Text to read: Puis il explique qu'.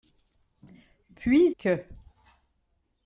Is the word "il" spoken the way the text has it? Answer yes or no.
no